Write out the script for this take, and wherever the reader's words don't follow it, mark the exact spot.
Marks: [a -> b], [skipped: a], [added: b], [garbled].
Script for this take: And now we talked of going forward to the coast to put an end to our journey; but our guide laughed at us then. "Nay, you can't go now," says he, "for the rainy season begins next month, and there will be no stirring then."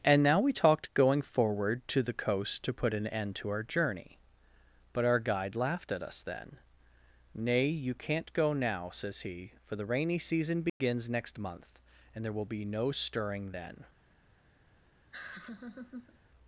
And now we talked [skipped: of] going forward to the coast to put an end to our journey; but our guide laughed at us then. "Nay, you can't go now," says he, "for the rainy season begins next month, and there will be no stirring then."